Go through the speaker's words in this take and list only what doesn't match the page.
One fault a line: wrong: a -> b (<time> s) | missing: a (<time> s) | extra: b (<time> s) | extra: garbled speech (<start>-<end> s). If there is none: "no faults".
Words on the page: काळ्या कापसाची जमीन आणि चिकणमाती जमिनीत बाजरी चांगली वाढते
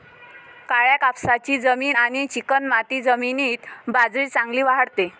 no faults